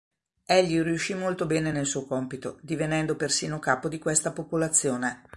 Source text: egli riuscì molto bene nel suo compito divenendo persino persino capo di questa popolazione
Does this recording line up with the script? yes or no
no